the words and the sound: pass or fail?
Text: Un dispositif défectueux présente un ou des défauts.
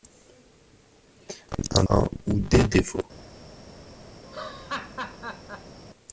fail